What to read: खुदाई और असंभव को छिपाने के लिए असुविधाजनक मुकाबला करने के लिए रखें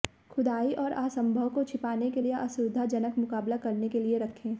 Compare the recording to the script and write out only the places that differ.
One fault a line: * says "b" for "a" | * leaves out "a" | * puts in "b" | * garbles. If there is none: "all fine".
all fine